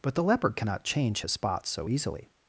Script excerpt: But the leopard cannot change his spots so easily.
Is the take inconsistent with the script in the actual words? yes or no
no